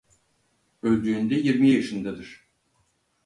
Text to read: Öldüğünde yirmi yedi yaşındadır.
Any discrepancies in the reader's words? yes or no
yes